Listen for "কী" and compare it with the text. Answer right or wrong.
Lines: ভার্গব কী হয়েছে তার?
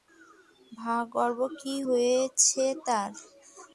right